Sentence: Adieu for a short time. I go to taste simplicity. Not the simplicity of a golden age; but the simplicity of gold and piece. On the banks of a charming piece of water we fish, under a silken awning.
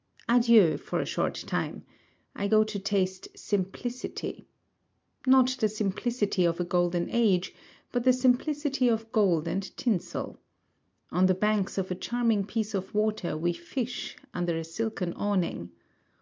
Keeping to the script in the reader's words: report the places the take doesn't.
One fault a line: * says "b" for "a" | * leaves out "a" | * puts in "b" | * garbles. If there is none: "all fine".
* says "tinsel" for "piece"